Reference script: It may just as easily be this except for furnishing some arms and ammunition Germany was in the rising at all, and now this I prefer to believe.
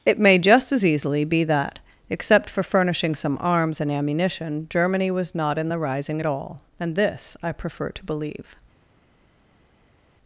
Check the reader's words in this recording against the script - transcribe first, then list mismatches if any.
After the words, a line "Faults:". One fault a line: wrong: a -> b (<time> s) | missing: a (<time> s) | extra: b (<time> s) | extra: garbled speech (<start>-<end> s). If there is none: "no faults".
It may just as easily be that except for furnishing some arms and ammunition Germany was not in the rising at all, and this I prefer to believe.
Faults:
wrong: this -> that (1.4 s)
extra: not (5.3 s)
missing: now (7.0 s)